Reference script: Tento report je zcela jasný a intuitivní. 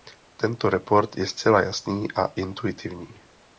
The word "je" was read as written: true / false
true